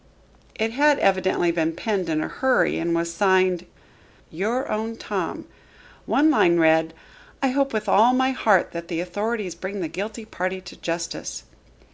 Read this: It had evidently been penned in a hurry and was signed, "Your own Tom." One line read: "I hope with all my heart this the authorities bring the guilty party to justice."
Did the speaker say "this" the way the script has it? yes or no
no